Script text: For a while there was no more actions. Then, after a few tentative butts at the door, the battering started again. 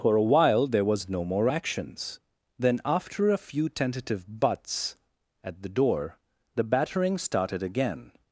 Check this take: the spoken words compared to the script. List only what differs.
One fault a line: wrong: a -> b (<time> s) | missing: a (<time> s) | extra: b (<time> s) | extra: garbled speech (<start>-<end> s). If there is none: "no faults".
no faults